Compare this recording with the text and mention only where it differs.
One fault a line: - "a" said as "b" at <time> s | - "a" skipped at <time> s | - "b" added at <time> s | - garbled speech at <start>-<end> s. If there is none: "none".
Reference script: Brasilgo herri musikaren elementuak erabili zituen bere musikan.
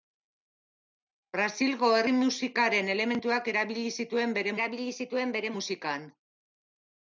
- "erabili zituen bere" added at 4.6 s